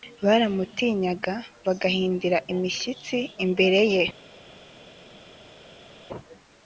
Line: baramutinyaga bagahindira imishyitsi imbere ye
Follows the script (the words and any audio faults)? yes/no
yes